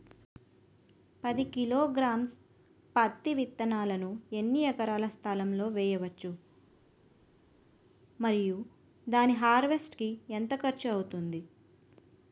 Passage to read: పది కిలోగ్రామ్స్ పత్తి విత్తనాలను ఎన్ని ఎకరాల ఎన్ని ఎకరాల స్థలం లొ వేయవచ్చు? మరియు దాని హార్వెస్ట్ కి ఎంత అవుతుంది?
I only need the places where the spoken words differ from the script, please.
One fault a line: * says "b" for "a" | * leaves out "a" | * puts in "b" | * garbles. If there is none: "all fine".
* leaves out "ఎన్ని ఎకరాల"
* puts in "ఖర్చు"